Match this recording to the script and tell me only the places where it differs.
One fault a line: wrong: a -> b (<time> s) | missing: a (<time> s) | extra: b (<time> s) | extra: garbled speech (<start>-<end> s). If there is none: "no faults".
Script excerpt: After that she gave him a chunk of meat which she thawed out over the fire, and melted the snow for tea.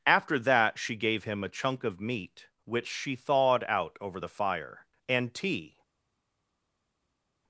missing: melted the snow for (5.3 s)